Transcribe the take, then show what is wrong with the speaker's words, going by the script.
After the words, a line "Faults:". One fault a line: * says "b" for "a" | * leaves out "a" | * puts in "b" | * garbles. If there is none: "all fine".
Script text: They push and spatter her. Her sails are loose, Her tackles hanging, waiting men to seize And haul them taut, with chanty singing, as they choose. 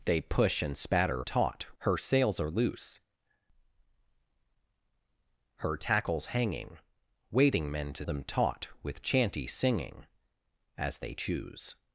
They push and spatter taut. Her sails are loose, Her tackles hanging, waiting men to them taut, with chanty singing, as they choose.
Faults:
* says "taut" for "her"
* leaves out "seize And haul"